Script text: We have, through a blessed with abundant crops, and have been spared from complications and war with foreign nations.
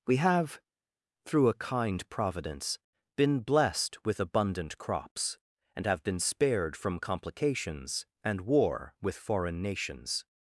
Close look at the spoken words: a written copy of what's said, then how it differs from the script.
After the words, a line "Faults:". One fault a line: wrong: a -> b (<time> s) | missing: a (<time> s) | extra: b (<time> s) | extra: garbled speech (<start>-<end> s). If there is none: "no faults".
We have, through a kind Providence, been blessed with abundant crops, and have been spared from complications and war with foreign nations.
Faults:
extra: kind Providence been (1.5 s)